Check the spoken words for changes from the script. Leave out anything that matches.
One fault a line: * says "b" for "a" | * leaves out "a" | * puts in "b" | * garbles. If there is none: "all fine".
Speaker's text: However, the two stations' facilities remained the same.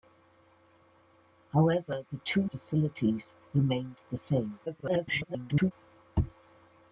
* leaves out "stations"
* garbles